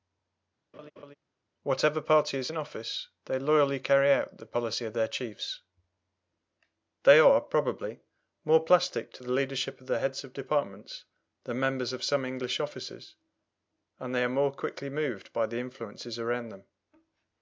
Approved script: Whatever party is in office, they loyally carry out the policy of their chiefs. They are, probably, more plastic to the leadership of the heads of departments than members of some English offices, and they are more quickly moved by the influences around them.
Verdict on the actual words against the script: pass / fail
pass